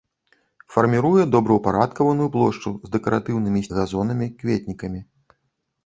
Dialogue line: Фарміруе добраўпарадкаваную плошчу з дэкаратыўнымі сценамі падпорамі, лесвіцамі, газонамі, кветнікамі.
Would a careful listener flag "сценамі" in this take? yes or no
yes